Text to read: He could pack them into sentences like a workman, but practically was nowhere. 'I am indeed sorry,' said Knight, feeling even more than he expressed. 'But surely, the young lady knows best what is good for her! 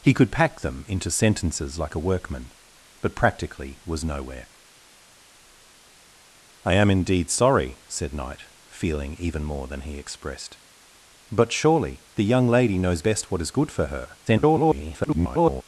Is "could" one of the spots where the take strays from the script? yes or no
no